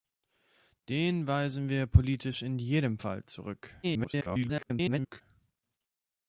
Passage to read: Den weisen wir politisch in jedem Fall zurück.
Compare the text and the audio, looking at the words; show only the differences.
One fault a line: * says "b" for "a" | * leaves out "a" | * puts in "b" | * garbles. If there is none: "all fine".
* garbles